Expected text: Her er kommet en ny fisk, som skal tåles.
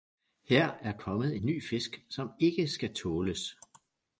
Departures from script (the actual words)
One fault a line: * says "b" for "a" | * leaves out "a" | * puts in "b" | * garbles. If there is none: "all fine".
* puts in "ikke"